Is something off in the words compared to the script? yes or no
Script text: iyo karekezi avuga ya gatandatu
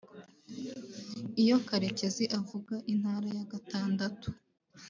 yes